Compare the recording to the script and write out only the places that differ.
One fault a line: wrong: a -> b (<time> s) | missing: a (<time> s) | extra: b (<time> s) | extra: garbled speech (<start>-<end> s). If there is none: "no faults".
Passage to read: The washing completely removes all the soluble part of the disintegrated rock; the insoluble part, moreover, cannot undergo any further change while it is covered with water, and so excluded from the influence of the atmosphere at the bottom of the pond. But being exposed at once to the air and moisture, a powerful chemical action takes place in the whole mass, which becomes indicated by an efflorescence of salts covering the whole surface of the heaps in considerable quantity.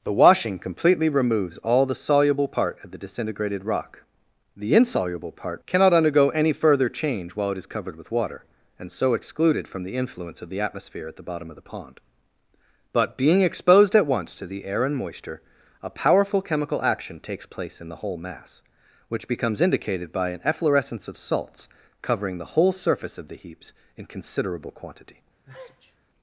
missing: moreover (5.6 s)